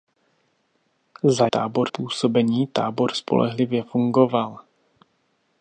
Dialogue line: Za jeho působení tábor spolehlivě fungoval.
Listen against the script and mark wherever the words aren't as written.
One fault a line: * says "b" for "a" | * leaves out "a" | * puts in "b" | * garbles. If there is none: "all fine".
* says "tábor" for "jeho"